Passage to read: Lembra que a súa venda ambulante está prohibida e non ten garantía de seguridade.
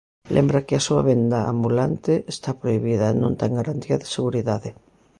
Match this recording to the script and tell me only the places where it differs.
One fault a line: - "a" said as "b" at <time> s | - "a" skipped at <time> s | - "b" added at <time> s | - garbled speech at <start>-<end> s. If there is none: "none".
none